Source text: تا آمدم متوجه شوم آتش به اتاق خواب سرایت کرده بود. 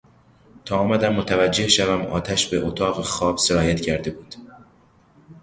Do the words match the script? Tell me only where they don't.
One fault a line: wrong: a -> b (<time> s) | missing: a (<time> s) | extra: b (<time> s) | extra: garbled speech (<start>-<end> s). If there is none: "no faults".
no faults